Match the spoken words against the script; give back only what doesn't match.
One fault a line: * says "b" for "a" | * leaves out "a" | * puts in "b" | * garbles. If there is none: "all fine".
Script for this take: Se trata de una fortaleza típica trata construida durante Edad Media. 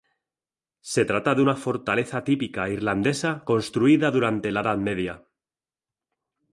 * says "irlandesa" for "trata"
* puts in "la"